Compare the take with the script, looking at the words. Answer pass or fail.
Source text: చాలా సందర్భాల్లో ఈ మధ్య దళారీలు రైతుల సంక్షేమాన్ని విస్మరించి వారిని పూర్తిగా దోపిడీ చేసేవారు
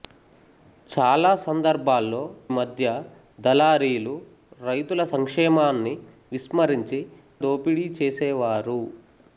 fail